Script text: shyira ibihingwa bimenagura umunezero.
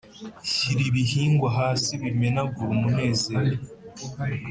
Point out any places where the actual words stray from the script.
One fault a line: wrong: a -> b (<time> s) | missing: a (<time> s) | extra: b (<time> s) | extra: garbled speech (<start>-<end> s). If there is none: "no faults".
extra: hasi (1.6 s)